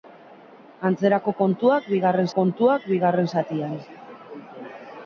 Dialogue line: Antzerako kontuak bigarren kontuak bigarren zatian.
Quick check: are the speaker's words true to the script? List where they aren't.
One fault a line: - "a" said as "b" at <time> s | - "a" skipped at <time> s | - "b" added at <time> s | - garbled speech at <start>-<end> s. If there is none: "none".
none